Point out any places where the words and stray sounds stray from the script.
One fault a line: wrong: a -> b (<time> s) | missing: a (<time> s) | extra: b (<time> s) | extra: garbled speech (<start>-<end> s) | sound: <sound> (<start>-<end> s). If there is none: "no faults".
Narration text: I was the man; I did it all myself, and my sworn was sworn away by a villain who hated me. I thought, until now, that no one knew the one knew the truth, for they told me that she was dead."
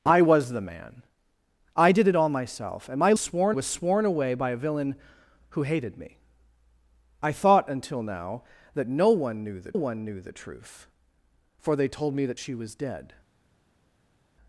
no faults